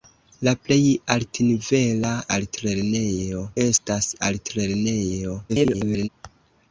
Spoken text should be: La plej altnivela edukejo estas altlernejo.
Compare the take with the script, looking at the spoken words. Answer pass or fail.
fail